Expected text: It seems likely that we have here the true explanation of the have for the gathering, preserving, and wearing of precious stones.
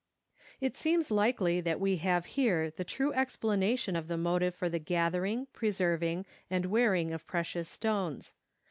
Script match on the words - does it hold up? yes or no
no